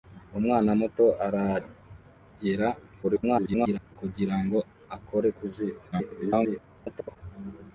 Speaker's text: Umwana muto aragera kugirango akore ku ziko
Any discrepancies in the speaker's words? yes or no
yes